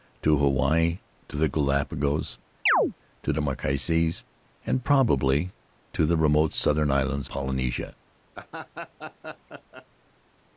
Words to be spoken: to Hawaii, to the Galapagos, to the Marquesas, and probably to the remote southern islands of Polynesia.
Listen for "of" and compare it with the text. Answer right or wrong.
wrong